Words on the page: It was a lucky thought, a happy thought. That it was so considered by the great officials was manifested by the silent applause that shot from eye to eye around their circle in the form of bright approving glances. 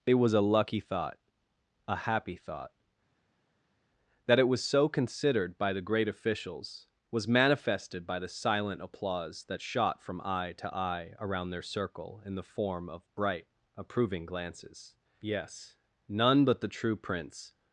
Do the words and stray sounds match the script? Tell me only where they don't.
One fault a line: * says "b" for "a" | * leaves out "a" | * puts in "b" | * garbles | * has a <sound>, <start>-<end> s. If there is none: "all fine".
* puts in "Yes none but the true prince"